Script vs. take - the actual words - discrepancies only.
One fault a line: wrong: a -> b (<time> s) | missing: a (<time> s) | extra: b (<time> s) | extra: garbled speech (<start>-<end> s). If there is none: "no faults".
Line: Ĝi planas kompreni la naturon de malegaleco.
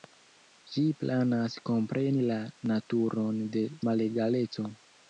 no faults